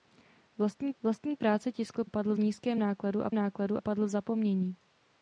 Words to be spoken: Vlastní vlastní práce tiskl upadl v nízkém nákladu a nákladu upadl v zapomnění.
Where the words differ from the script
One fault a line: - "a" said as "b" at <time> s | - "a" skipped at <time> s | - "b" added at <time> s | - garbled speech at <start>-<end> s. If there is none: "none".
none